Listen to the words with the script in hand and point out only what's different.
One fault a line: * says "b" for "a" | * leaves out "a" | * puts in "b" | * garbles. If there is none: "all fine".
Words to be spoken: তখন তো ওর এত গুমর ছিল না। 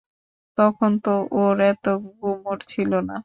all fine